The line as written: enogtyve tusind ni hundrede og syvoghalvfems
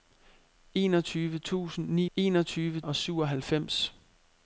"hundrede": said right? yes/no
no